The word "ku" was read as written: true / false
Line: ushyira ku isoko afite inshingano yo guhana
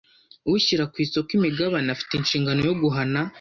true